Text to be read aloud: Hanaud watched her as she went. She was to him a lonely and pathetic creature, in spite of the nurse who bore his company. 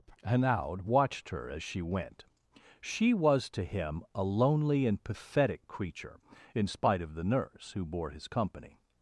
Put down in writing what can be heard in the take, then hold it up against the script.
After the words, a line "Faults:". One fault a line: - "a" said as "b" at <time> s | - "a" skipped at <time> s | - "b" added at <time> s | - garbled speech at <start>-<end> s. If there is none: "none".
Hanaud watched her as she went. She was to him a lonely and pathetic creature, in spite of the nurse who bore his company.
Faults:
none